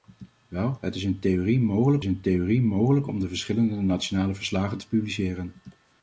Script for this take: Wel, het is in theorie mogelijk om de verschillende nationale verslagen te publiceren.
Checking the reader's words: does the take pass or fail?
fail